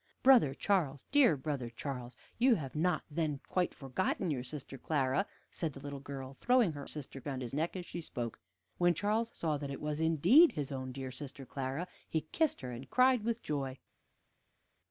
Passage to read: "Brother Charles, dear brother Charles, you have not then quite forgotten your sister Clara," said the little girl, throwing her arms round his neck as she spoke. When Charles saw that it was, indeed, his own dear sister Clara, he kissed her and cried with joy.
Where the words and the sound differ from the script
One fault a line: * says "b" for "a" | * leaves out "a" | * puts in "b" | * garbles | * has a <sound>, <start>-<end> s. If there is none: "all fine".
* says "sister" for "arms"